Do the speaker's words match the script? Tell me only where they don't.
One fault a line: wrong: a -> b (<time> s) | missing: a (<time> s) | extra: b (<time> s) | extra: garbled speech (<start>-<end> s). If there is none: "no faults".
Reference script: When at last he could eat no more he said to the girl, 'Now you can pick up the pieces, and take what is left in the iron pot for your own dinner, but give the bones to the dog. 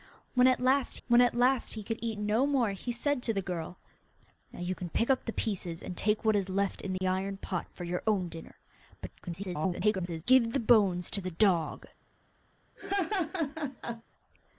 extra: when at last (1.1 s)
extra: garbled speech (9.2-10.2 s)